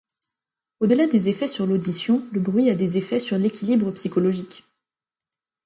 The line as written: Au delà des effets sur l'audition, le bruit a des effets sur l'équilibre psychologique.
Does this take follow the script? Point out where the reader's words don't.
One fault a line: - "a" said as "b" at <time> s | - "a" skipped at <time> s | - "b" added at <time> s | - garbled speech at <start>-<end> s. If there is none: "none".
none